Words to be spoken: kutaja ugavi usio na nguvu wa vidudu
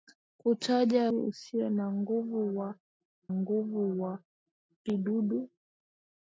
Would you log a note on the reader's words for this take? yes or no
yes